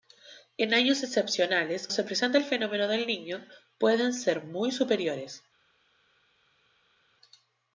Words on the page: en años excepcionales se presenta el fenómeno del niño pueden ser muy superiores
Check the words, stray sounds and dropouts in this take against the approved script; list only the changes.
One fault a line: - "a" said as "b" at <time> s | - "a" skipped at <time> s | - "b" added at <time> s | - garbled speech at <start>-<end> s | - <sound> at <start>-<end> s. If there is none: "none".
none